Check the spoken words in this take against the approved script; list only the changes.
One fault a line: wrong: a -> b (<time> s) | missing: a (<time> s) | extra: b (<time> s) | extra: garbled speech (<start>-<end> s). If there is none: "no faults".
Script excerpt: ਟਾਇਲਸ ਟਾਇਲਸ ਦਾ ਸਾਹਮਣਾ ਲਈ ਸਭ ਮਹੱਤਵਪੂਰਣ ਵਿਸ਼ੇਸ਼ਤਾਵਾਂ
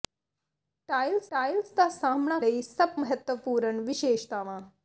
no faults